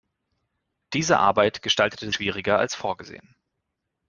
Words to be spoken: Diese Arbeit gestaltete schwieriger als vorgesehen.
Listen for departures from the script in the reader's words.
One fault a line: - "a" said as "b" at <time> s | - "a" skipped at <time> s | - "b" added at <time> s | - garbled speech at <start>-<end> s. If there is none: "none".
none